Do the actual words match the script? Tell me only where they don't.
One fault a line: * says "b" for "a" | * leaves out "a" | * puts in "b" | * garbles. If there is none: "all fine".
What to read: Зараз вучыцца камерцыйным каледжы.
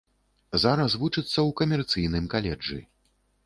* puts in "ў"